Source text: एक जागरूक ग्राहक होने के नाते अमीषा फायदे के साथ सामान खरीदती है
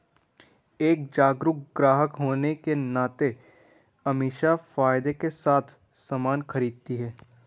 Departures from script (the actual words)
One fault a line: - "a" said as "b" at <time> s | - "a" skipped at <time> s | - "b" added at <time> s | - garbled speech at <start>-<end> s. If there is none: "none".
none